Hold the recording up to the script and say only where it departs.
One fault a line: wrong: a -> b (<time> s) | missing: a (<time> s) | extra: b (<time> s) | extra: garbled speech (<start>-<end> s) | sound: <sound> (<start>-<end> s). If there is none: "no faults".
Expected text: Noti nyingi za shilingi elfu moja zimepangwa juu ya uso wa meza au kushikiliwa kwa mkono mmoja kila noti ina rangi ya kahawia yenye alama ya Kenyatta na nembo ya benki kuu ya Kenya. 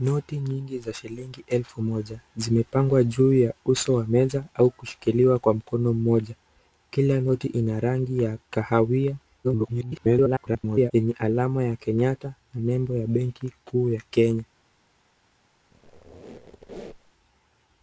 extra: garbled speech (9.4-10.9 s)
sound: squeak (15.7-17.1 s)